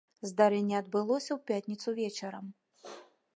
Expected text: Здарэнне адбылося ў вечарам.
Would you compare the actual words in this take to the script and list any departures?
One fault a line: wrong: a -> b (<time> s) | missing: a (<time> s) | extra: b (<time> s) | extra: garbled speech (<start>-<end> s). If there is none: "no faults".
extra: пятніцу (1.5 s)